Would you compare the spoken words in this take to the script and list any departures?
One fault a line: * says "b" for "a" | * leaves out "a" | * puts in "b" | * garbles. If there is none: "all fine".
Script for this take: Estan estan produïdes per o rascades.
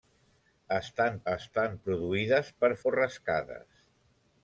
all fine